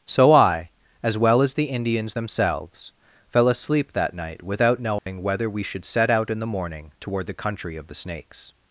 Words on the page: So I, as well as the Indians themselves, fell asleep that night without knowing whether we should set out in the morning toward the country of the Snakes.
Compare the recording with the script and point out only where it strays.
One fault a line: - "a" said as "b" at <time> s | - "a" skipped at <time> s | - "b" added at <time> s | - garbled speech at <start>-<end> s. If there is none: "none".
none